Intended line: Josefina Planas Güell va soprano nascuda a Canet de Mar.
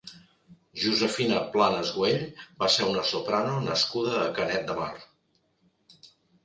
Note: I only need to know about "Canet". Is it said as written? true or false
true